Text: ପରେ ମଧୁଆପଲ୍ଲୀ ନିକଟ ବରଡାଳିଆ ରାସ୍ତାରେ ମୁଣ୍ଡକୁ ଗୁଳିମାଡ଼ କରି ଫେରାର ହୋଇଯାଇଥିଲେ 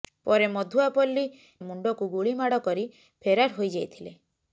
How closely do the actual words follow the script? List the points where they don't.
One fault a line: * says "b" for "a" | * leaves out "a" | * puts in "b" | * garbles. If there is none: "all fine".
* leaves out "ନିକଟ ବରଡାଳିଆ ରାସ୍ତାରେ"